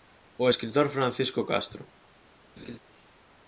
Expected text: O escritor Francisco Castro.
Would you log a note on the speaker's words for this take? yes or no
no